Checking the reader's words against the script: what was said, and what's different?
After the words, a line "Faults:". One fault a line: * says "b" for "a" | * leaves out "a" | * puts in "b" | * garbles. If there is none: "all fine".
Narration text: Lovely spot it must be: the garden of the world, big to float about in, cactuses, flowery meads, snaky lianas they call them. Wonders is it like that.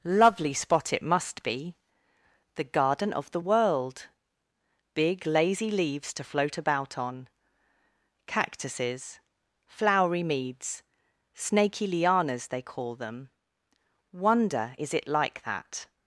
Lovely spot it must be: the garden of the world, big lazy leaves to float about on, cactuses, flowery meads, snaky lianas they call them. Wonder is it like that.
Faults:
* puts in "lazy leaves"
* says "on" for "in"
* says "Wonder" for "Wonders"